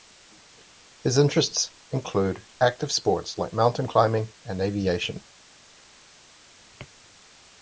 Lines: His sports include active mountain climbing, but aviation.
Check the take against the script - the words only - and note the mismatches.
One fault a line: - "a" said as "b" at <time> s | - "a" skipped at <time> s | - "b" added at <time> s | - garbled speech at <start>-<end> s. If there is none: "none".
- "sports" said as "interests" at 1.2 s
- "sports like" added at 2.9 s
- "but" said as "and" at 4.4 s